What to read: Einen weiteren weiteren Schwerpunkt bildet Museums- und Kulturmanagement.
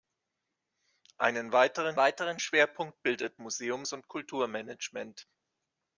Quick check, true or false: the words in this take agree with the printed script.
true